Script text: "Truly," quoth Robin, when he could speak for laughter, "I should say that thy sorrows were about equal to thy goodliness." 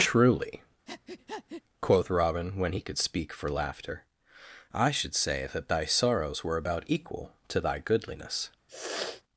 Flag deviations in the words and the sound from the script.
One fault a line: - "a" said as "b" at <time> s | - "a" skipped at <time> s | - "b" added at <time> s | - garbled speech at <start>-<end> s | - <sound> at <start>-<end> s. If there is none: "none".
- breath at 0.9-1.6 s
- sniff at 8.7-9.2 s